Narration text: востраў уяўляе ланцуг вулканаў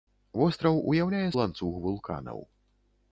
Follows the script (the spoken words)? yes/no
yes